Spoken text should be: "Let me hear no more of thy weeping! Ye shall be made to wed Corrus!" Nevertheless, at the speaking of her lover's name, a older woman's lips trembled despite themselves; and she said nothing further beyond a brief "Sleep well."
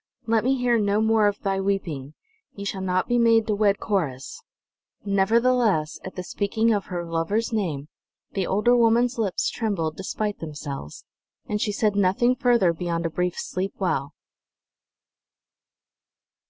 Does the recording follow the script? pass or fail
fail